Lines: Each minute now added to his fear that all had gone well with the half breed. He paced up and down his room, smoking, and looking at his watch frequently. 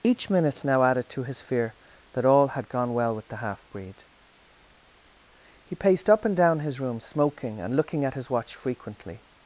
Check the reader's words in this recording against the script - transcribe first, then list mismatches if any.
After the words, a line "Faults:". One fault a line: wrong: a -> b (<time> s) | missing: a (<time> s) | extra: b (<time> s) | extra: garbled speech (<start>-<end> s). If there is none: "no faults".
Each minute now added to his fear that all had gone well with the half breed. He paced up and down his room, smoking, and looking at his watch frequently.
Faults:
no faults